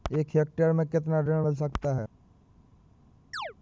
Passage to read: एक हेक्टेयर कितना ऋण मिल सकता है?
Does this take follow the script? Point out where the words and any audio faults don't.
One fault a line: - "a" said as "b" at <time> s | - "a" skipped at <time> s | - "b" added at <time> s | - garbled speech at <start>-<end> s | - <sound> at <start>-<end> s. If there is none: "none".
- "में" added at 0.7 s
- chirp at 3.3-3.5 s